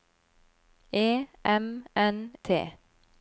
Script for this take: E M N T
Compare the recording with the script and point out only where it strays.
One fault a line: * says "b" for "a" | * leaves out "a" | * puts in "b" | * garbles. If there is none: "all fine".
all fine